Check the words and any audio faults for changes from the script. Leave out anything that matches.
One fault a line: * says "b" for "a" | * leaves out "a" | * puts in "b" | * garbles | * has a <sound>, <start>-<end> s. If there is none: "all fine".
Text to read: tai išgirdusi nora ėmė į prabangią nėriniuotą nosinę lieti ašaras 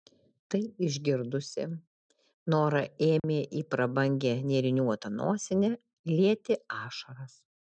* has a dropout, 3.2-3.2 s